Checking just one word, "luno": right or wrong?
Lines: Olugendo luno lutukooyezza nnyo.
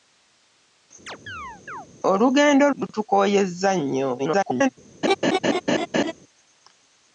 wrong